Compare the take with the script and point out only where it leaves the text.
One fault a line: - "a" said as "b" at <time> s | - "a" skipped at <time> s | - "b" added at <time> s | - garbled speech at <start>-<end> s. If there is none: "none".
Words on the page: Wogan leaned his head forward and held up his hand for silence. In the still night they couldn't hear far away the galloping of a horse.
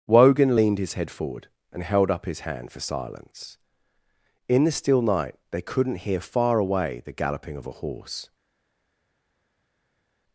none